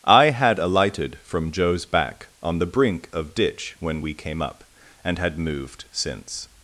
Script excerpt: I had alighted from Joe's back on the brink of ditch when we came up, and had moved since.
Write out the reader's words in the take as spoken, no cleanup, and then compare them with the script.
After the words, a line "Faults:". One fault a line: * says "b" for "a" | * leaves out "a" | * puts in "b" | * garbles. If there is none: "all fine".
I had alighted from Joe's back on the brink of ditch when we came up, and had moved since.
Faults:
all fine